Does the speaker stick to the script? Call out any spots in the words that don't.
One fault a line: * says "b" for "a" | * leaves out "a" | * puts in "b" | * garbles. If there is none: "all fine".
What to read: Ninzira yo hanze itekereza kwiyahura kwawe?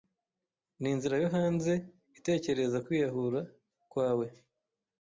all fine